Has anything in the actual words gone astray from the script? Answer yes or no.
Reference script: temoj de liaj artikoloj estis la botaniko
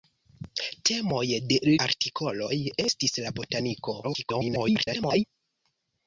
yes